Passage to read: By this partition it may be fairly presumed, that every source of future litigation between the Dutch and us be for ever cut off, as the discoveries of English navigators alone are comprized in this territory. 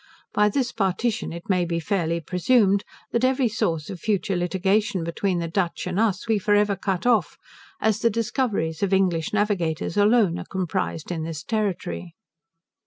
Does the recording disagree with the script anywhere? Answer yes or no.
no